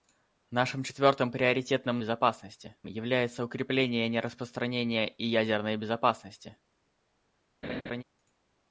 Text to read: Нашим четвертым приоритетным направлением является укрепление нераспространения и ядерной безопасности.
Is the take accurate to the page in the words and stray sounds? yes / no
no